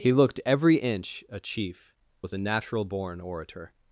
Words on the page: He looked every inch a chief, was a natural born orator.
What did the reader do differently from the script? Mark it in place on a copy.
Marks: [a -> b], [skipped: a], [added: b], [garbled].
He looked every inch a chief, was a natural born orator.